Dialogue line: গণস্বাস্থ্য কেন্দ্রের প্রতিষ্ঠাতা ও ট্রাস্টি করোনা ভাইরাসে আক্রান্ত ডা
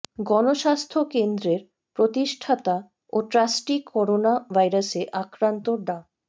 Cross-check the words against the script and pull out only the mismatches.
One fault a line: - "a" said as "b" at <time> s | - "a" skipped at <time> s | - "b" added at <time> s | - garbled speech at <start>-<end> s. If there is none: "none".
none